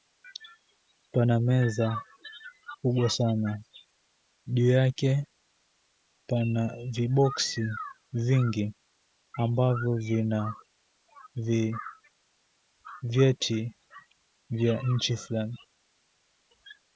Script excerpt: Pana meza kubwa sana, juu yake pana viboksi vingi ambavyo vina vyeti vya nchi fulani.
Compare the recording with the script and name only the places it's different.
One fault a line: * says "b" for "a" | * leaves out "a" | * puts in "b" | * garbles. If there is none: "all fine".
all fine